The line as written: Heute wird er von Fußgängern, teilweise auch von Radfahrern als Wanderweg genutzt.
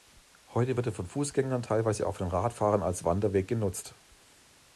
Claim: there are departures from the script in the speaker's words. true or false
false